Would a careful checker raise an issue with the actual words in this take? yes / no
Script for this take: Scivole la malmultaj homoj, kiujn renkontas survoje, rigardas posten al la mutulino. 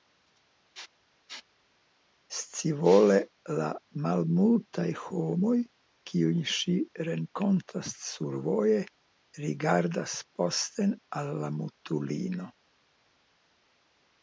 yes